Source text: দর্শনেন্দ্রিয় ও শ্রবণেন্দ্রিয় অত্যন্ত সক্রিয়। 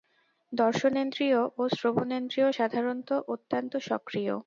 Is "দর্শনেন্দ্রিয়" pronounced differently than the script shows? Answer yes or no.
no